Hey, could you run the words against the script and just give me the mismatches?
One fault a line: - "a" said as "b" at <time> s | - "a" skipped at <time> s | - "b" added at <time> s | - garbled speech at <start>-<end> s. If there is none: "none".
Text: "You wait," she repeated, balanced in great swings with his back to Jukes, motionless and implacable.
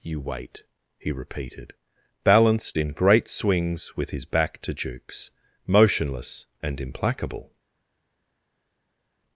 - "she" said as "he" at 1.0 s